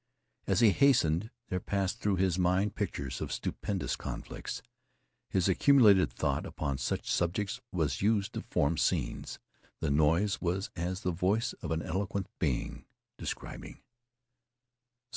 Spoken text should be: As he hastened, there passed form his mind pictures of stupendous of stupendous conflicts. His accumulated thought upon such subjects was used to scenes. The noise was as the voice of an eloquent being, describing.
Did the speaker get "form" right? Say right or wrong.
wrong